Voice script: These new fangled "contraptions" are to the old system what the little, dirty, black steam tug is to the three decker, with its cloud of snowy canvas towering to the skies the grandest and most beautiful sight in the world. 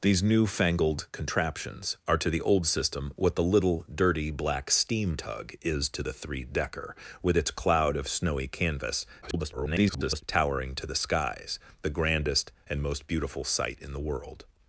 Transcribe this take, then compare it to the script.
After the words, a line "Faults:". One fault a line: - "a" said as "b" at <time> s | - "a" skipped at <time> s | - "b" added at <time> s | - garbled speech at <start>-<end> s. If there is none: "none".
These new fangled "contraptions" are to the old system what the little, dirty, black steam tug is to the three decker, with its cloud of snowy canvas [garbled] towering to the skies the grandest and most beautiful sight in the world.
Faults:
- garbled speech at 9.2-10.2 s